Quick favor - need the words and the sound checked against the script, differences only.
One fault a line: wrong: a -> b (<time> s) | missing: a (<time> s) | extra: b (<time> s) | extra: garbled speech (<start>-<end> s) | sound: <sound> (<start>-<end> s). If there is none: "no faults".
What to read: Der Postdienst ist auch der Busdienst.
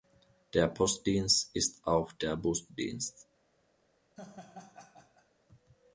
sound: laugh (4.2-5.3 s)